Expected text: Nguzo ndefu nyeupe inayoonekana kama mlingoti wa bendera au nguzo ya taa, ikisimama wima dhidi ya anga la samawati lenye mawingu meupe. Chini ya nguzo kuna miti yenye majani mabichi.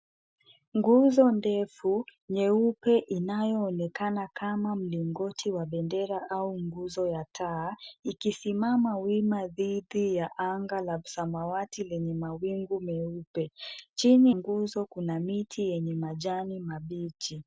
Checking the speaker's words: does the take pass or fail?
fail